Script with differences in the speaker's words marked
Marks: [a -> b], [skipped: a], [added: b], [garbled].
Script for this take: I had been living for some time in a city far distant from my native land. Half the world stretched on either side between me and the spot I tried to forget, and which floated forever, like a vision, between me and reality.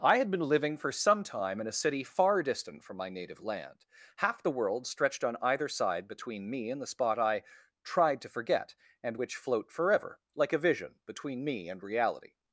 I had been living for some time in a city far distant from my native land. Half the world stretched on either side between me and the spot I tried to forget, and which [floated -> float] forever, like a vision, between me and reality.